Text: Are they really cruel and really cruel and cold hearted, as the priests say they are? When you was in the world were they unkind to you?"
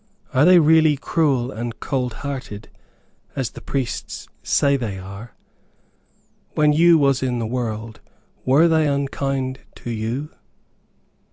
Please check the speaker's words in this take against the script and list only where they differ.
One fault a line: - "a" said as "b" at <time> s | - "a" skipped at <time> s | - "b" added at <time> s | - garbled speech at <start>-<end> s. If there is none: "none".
- "really cruel and" skipped at 1.8 s